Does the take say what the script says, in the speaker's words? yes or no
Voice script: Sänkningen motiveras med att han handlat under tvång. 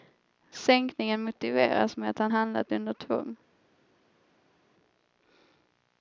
yes